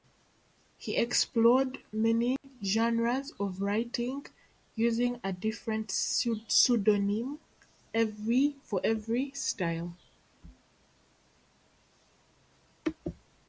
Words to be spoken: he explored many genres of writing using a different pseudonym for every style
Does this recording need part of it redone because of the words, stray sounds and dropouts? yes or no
yes